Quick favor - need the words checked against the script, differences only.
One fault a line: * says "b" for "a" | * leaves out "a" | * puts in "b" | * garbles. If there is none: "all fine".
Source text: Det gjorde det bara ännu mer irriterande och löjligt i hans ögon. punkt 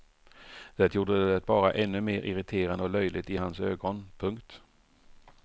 all fine